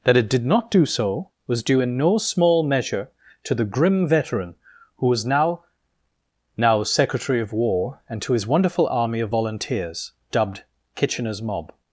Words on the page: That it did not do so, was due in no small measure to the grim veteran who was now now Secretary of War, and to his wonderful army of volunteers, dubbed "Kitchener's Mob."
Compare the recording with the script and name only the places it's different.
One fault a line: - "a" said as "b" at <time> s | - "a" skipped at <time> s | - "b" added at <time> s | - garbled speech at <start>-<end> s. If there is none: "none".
none